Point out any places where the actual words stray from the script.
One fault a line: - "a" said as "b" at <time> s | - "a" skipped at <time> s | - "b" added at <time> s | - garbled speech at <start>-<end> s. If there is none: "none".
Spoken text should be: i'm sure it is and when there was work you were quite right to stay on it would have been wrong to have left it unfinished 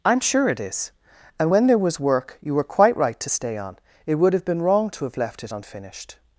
none